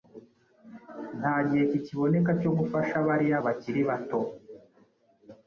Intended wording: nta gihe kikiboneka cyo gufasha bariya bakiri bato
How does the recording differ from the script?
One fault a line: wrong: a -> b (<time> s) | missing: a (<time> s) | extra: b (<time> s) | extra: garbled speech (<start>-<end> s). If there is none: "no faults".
no faults